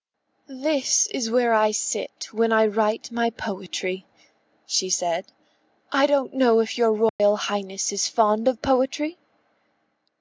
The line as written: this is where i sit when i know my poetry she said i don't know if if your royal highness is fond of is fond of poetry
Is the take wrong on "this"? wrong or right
right